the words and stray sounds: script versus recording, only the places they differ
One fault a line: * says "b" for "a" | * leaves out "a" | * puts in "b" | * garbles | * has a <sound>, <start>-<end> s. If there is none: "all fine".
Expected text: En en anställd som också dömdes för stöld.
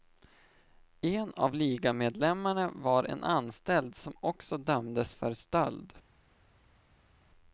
* puts in "av ligamedlemmarna var"